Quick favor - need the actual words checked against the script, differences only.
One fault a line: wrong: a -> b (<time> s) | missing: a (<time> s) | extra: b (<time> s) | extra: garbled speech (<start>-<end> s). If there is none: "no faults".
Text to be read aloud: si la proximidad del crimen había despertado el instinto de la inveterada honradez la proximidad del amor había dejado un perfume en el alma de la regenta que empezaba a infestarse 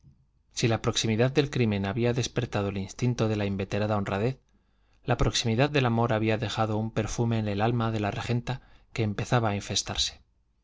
no faults